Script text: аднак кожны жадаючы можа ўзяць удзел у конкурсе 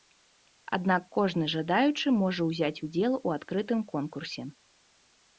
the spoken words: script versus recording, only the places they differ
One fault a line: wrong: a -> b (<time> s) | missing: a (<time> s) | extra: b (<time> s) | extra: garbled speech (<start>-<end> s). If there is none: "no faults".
extra: адкрытым (3.4 s)